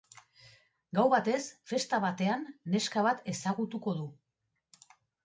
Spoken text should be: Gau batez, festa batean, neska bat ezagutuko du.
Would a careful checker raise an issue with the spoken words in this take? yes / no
no